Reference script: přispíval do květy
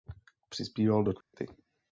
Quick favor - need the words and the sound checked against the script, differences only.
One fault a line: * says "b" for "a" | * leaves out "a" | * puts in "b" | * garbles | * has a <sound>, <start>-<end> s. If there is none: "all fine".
* has a dropout, 1.2-1.3 s